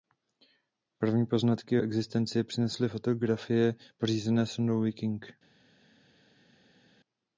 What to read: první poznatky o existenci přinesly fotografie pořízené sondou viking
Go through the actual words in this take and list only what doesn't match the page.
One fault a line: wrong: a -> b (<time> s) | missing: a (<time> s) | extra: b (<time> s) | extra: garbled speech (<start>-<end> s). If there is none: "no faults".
no faults